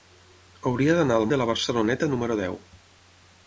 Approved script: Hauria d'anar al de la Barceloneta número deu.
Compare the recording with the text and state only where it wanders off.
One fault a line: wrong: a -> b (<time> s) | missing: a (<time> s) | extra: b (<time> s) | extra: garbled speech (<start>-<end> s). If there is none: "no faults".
no faults